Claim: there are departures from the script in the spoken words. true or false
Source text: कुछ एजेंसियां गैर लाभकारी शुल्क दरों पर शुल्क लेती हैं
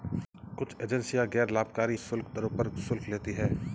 false